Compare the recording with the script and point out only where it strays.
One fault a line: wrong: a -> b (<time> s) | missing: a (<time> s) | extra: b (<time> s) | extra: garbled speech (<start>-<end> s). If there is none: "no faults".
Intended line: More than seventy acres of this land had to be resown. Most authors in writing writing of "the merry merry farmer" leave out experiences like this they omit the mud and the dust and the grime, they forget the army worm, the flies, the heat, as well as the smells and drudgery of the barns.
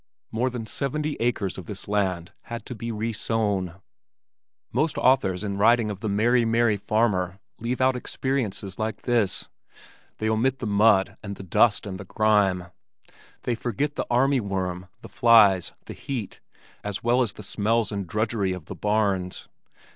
missing: writing (5.9 s)